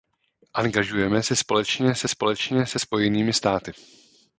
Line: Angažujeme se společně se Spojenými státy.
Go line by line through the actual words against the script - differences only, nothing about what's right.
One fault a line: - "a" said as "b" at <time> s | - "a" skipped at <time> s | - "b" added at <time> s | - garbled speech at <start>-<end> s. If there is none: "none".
- "společně se" added at 2.1 s